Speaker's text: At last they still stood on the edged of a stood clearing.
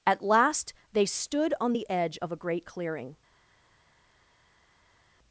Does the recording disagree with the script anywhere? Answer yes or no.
yes